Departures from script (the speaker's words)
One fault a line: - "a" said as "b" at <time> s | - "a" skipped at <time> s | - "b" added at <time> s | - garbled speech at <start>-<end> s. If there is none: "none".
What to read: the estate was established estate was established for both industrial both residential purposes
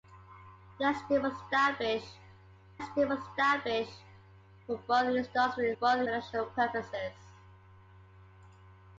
none